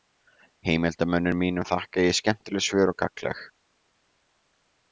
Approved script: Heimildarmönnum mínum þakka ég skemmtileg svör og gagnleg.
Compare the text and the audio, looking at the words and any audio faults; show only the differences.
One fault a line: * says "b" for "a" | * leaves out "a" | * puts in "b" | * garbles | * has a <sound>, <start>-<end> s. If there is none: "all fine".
all fine